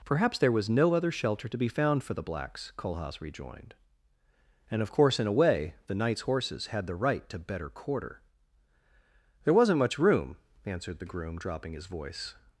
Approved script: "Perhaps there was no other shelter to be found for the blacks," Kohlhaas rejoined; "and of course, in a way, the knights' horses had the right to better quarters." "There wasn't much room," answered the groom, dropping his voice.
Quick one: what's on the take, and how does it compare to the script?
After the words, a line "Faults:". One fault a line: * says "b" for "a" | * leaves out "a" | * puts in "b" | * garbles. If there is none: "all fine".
"Perhaps there was no other shelter to be found for the blacks," Kohlhaas rejoined; "and of course, in a way, the knights' horses had the right to better quarter." "There wasn't much room," answered the groom, dropping his voice.
Faults:
* says "quarter" for "quarters"